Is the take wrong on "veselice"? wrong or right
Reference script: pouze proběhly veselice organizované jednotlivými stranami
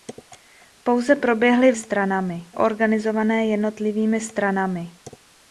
wrong